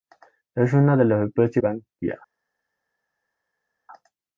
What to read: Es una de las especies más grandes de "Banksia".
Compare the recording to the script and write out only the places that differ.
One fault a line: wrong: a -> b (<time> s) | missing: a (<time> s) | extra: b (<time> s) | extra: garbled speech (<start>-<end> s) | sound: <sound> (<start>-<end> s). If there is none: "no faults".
missing: más grandes de (1.6 s)